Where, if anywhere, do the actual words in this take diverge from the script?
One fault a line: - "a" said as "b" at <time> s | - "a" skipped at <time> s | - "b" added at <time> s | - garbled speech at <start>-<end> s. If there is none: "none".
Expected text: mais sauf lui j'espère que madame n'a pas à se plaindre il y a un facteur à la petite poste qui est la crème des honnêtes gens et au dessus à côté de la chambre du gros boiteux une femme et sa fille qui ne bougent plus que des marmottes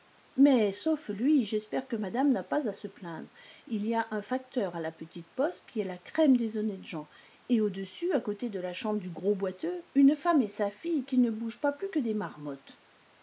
- "pas" added at 11.6 s